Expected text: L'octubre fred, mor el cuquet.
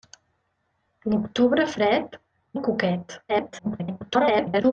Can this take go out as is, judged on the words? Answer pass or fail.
fail